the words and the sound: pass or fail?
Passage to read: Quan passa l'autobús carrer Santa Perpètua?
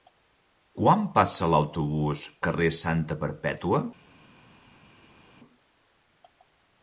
pass